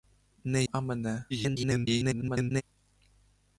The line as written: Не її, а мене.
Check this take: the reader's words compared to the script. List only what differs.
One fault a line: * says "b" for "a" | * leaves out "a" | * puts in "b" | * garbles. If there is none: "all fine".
* leaves out "її"
* garbles